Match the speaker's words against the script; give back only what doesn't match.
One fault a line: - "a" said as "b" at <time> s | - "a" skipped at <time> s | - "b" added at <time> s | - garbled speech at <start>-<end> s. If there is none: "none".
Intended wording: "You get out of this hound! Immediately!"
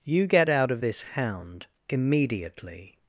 none